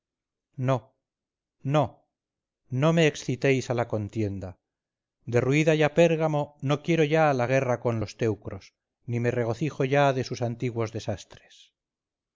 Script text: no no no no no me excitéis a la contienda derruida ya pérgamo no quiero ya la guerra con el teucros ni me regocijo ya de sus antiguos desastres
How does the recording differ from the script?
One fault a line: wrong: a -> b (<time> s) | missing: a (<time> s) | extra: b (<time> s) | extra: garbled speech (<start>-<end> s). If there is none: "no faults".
missing: no no (2.9 s)
wrong: el -> los (8.0 s)